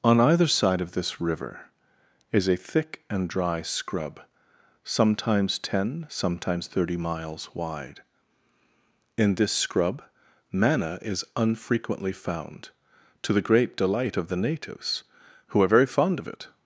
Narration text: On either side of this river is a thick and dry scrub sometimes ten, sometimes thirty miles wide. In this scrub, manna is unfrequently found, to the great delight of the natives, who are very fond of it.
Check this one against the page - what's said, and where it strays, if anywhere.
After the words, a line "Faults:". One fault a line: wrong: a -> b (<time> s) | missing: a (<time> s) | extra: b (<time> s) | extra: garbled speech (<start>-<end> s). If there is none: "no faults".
On either side of this river is a thick and dry scrub sometimes ten, sometimes thirty miles wide. In this scrub, manna is unfrequently found, to the great delight of the natives, who are very fond of it.
Faults:
no faults